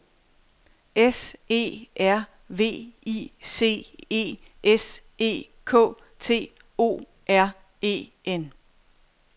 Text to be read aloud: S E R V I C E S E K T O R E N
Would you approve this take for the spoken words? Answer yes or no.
yes